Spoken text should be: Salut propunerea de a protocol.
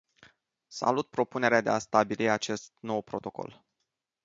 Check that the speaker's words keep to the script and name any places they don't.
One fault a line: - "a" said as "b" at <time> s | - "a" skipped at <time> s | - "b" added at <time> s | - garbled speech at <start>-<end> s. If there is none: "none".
- "stabili acest nou" added at 1.8 s